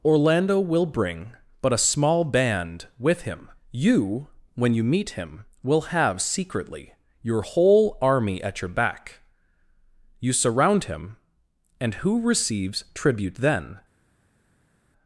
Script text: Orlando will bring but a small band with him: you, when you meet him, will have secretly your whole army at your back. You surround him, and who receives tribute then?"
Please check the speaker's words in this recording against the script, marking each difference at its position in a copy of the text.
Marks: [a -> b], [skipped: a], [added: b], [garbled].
Orlando will bring but a small band with him: you, when you meet him, will have secretly your whole army at your back. You surround him, and who receives tribute then?"